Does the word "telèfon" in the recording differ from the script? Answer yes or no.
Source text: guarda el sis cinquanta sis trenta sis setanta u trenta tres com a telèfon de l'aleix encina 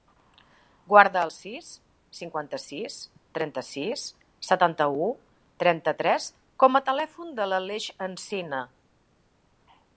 no